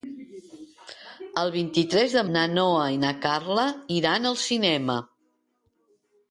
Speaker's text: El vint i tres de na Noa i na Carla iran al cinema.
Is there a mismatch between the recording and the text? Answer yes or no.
no